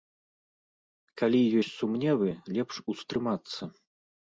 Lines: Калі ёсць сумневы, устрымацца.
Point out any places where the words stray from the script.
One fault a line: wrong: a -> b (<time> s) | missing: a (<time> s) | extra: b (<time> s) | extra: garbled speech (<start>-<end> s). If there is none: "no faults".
extra: лепш (2.5 s)